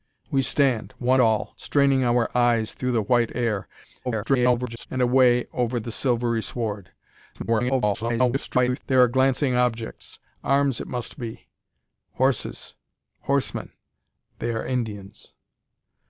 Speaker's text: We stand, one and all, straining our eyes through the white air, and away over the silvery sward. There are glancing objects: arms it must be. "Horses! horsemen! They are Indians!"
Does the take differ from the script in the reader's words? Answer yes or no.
yes